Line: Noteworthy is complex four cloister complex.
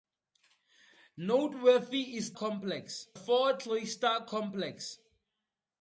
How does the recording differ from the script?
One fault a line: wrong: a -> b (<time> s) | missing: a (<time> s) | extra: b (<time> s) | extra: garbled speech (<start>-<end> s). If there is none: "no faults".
no faults